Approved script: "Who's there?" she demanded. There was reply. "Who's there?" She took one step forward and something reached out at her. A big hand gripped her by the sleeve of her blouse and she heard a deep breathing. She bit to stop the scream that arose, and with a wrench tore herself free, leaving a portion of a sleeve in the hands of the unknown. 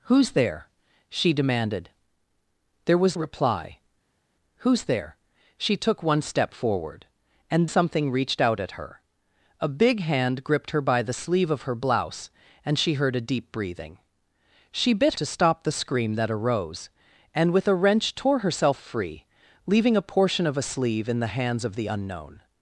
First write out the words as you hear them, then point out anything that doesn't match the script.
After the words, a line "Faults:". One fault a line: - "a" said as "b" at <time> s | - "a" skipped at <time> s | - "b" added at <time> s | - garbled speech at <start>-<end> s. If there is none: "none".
"Who's there?" she demanded. There was reply. "Who's there?" She took one step forward and something reached out at her. A big hand gripped her by the sleeve of her blouse and she heard a deep breathing. She bit to stop the scream that arose, and with a wrench tore herself free, leaving a portion of a sleeve in the hands of the unknown.
Faults:
none